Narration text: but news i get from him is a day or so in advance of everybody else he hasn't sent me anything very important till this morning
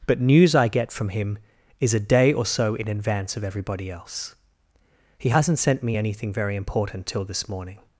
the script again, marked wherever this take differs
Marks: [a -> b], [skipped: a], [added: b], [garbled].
but news i get from him is a day or so in advance of everybody else he hasn't sent me anything very important till this morning